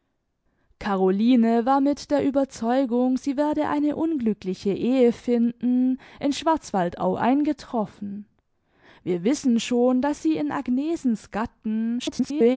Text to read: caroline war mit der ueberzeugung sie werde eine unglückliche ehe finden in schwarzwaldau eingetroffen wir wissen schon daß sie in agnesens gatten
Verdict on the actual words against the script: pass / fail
fail